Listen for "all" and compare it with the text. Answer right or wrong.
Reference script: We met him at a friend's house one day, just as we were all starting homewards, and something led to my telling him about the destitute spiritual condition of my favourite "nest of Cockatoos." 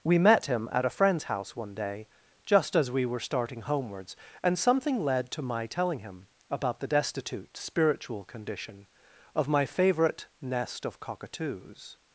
wrong